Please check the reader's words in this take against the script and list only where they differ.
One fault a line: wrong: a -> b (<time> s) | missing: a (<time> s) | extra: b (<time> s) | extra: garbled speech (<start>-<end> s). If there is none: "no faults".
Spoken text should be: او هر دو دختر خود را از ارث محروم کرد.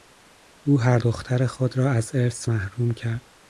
missing: دو (1.0 s)